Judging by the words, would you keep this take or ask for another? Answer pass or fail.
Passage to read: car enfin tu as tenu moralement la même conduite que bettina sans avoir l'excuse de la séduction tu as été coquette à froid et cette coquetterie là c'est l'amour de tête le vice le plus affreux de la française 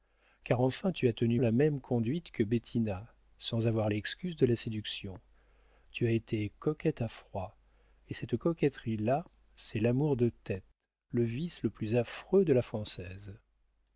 fail